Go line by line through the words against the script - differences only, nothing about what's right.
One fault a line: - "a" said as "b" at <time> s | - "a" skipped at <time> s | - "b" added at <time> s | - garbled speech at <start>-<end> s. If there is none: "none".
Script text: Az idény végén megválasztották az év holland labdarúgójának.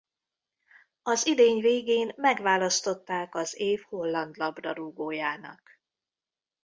none